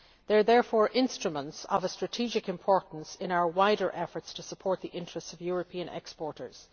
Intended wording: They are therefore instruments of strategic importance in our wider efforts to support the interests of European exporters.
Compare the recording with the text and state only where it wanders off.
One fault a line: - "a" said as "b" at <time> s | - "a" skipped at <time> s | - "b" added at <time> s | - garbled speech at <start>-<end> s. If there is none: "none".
none